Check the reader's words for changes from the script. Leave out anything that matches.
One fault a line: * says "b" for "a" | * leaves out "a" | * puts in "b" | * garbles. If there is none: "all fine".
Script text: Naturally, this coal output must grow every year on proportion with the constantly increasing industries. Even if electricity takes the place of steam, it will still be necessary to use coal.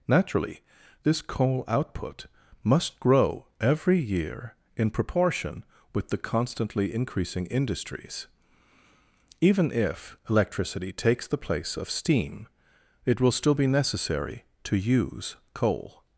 * says "in" for "on"